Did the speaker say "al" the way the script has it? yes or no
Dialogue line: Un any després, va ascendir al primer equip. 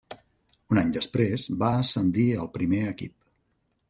yes